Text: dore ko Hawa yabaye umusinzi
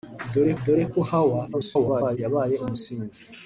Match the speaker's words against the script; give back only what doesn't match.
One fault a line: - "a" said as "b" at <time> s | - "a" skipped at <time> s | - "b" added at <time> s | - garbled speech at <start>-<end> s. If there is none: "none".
- "dore" added at 0.6 s
- garbled speech at 1.5-2.2 s